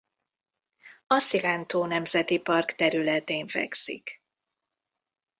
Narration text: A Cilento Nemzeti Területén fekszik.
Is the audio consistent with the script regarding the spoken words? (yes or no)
no